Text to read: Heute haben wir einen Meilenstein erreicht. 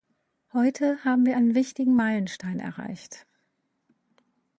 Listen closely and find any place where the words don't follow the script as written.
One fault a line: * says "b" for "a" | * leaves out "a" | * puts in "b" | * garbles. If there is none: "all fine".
* puts in "wichtigen"